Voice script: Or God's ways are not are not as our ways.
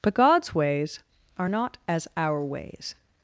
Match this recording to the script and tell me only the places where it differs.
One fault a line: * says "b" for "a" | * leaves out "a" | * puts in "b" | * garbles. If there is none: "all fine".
* says "But" for "Or"
* leaves out "are not"